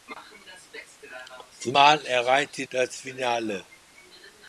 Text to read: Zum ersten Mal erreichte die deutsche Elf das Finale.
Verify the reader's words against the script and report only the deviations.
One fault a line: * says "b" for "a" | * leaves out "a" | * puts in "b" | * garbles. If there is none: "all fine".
* leaves out "ersten"
* leaves out "die deutsche Elf"